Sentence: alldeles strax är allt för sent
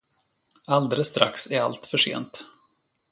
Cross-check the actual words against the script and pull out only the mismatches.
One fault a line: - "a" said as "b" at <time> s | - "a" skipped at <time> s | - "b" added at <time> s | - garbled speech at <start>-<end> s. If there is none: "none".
none